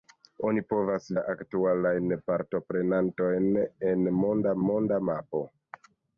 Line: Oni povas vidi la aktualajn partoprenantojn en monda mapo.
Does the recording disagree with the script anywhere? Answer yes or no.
yes